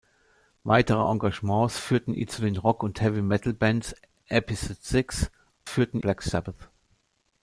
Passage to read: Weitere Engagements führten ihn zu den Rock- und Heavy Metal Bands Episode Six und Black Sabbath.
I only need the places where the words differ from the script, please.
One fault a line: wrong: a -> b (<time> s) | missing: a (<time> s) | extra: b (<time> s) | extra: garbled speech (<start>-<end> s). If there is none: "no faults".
wrong: und -> führten (5.6 s)